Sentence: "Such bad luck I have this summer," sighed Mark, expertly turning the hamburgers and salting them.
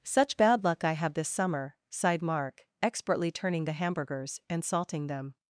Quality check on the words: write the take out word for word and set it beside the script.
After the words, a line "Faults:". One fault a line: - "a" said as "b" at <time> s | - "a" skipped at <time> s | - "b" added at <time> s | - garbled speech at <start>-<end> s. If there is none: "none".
"Such bad luck I have this summer," sighed Mark, expertly turning the hamburgers and salting them.
Faults:
none